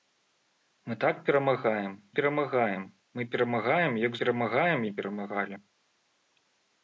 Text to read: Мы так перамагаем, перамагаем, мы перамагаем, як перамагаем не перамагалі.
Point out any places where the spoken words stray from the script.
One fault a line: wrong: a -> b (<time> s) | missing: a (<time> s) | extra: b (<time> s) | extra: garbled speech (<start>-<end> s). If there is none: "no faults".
no faults